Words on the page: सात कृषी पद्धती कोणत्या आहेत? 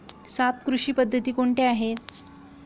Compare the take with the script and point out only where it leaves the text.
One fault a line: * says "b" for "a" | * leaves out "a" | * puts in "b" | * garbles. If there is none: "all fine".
all fine